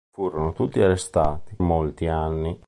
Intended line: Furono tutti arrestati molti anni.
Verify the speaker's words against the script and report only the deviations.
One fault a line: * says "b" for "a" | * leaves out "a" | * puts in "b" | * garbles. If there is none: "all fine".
all fine